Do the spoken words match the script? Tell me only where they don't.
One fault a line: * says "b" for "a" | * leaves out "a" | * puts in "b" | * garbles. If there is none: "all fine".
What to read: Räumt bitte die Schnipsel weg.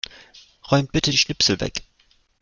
all fine